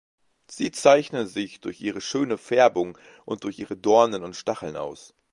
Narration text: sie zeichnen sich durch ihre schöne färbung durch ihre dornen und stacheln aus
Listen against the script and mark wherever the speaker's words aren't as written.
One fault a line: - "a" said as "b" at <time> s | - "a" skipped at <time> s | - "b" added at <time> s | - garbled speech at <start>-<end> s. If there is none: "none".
- "und" added at 3.2 s